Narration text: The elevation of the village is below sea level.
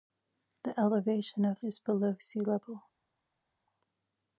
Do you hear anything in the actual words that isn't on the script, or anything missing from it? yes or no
yes